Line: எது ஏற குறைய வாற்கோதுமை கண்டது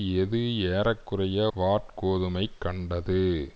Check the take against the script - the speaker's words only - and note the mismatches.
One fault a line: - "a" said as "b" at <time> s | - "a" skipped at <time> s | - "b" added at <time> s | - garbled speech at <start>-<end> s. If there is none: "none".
none